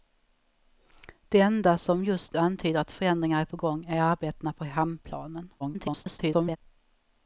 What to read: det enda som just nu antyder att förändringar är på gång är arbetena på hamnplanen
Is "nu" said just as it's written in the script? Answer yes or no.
no